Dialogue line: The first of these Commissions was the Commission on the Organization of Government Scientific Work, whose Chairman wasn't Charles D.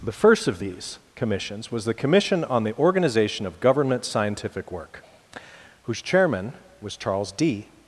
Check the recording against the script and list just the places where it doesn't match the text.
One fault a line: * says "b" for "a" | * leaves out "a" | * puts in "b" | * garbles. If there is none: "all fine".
* says "was" for "wasn't"